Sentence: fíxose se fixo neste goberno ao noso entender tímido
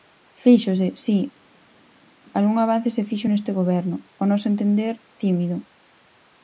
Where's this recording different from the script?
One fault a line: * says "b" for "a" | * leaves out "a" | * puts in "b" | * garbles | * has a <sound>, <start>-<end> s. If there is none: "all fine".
* puts in "si algún avance"